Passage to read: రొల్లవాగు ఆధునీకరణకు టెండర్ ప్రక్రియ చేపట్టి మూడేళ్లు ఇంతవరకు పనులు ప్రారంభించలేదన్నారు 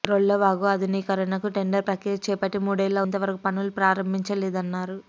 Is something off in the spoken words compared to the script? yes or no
no